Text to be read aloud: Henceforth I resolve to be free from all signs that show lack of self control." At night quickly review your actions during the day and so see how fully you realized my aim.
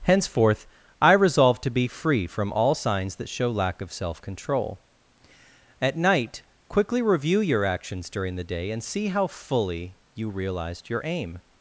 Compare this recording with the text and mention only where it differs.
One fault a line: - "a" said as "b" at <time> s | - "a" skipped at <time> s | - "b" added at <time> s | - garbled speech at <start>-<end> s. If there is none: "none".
- "so" skipped at 8.8 s
- "my" said as "your" at 10.9 s